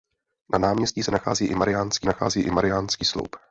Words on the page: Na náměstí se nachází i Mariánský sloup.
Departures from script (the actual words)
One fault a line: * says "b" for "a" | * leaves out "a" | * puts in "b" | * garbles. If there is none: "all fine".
* puts in "nachází i Mariánský"